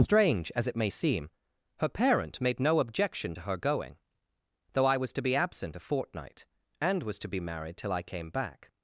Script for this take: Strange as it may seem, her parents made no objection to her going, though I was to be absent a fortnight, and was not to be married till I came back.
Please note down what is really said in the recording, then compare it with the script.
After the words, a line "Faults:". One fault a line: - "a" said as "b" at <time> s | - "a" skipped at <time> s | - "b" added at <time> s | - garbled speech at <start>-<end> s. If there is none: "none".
Strange as it may seem, her parent made no objection to her going, though I was to be absent a fortnight, and was to be married till I came back.
Faults:
- "parents" said as "parent" at 1.9 s
- "not" skipped at 7.2 s